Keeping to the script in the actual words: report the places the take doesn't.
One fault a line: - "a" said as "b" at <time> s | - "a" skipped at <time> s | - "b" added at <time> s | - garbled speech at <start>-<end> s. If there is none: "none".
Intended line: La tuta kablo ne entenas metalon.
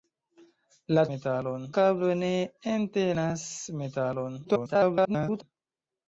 - "tuta" said as "metalon" at 1.1 s
- garbled speech at 4.4-5.4 s